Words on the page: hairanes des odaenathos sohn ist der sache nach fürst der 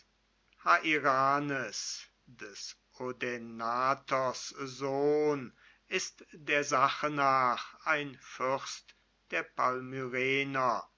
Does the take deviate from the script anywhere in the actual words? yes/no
yes